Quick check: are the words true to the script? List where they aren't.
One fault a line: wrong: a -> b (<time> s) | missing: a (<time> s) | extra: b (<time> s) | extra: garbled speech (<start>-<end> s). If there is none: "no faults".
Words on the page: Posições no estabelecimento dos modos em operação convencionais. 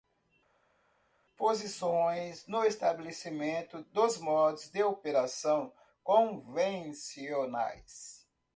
wrong: em -> de (4.7 s)